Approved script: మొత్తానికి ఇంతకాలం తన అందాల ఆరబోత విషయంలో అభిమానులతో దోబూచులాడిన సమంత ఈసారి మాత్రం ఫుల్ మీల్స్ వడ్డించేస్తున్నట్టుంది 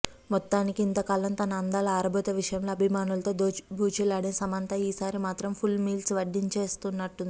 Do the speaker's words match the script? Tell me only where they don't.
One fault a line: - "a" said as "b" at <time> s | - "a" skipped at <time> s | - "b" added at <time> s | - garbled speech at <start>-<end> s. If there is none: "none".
none